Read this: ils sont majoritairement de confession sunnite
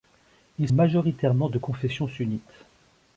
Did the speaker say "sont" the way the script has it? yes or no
no